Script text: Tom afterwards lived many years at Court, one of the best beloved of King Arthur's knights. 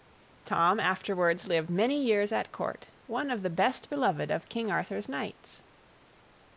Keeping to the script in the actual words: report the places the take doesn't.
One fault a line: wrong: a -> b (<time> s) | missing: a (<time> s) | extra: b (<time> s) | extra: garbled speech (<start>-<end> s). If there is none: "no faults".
no faults